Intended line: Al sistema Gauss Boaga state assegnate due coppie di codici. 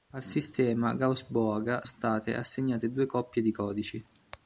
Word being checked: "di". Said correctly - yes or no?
yes